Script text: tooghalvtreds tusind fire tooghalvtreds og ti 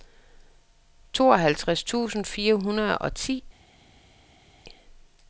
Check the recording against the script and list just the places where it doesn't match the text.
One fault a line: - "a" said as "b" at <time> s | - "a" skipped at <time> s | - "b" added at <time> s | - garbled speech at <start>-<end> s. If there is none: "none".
- "tooghalvtreds" said as "hundrede" at 2.5 s